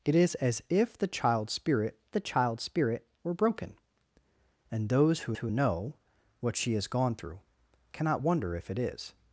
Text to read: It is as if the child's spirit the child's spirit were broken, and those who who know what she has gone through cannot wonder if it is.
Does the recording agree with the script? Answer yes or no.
yes